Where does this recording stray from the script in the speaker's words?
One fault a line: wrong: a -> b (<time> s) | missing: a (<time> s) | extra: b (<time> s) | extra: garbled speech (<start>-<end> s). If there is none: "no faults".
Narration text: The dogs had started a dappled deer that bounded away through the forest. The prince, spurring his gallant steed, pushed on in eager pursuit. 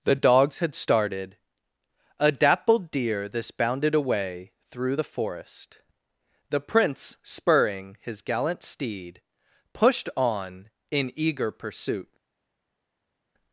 wrong: that -> this (3.3 s)